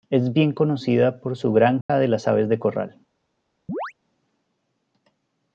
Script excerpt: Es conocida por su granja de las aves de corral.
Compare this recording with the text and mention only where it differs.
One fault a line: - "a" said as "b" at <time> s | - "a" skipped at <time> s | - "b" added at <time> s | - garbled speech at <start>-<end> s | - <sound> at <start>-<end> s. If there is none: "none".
- "bien" added at 0.3 s
- dropout at 1.8-1.9 s
- chirp at 3.7-3.9 s